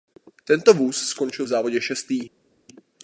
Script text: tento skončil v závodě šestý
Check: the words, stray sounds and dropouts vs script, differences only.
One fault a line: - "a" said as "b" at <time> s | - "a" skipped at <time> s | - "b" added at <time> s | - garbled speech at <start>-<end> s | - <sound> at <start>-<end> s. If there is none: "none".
- "vůz" added at 0.7 s